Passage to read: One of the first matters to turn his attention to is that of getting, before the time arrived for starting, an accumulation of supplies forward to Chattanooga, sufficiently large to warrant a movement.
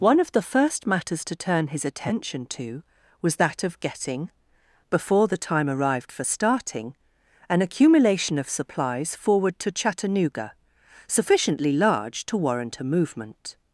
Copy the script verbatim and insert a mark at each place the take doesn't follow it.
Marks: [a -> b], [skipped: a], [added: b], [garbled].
One of the first matters to turn his attention to [is -> was] that of getting, before the time arrived for starting, an accumulation of supplies forward to Chattanooga, sufficiently large to warrant a movement.